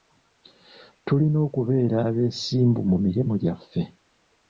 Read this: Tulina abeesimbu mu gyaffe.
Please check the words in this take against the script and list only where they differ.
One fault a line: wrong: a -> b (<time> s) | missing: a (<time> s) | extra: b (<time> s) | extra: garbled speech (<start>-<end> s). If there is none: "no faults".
extra: okubeera (1.5 s)
extra: mirimu (3.0 s)